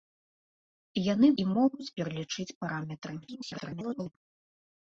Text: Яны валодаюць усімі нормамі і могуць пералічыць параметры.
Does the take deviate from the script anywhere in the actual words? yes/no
yes